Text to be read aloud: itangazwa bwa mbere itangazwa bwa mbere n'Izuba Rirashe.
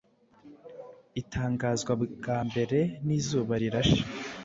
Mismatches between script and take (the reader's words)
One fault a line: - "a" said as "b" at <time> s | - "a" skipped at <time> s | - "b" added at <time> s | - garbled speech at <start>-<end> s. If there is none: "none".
- "itangazwa bwa mbere" skipped at 2.8 s